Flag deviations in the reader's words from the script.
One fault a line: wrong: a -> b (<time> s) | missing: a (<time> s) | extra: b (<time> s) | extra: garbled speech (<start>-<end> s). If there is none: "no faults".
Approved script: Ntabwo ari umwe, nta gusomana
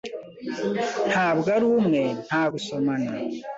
no faults